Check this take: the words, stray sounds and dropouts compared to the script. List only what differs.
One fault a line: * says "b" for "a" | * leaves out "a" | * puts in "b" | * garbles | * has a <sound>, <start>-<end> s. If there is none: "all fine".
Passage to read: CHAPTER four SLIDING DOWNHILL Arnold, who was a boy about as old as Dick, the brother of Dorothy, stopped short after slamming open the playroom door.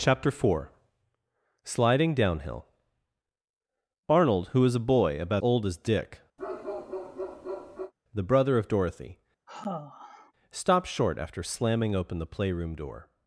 * leaves out "as"
* has a bark, 6.4-7.9 s
* has a sigh, 9.5-10.3 s